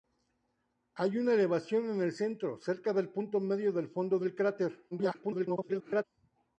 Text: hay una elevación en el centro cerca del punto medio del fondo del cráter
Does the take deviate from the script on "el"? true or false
false